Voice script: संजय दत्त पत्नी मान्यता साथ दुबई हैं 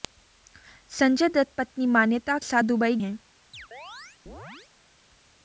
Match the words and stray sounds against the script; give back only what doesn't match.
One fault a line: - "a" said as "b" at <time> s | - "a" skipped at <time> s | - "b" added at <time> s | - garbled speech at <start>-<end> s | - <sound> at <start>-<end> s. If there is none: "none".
- chirp at 3.5-4.7 s